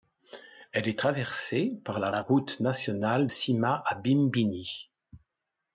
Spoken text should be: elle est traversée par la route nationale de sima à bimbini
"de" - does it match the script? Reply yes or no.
no